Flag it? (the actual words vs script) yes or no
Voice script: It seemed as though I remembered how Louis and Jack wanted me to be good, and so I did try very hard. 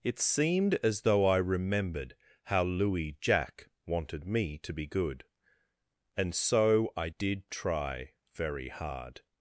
yes